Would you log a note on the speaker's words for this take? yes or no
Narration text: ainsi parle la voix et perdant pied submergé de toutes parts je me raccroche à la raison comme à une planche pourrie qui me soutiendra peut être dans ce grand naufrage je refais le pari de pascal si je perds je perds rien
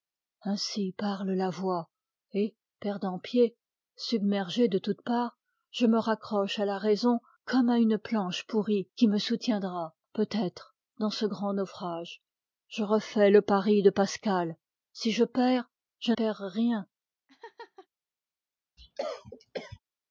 no